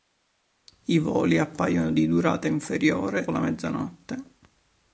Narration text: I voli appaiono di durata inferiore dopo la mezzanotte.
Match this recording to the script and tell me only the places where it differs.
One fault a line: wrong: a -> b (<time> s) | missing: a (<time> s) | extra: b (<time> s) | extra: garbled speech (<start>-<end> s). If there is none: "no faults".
missing: dopo (3.3 s)